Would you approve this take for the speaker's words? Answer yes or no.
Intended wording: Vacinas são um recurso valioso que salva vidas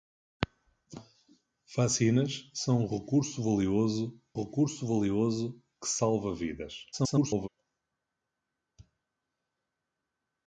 no